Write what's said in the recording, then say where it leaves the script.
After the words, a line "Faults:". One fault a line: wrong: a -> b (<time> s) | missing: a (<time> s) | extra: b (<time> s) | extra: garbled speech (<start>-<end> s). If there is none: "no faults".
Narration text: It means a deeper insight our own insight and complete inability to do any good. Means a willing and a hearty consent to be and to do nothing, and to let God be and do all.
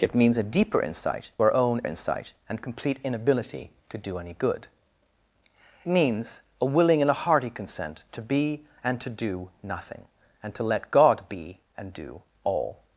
It means a deeper insight our own insight and complete inability to do any good. Means a willing and a hearty consent to be and to do nothing, and to let God be and do all.
Faults:
no faults